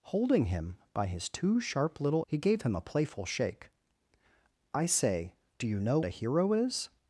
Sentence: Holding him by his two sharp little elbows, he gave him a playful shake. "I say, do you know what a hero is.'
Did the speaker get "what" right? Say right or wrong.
wrong